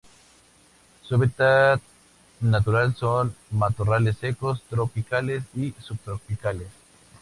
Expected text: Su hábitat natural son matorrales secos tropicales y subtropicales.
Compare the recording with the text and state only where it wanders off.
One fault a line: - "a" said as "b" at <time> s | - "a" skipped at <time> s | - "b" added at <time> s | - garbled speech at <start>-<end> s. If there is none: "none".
none